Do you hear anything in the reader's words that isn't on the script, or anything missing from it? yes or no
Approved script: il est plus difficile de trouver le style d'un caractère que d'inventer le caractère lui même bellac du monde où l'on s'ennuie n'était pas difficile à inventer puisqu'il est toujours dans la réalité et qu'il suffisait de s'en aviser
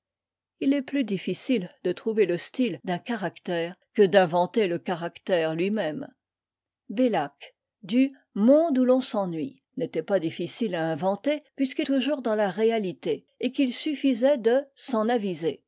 yes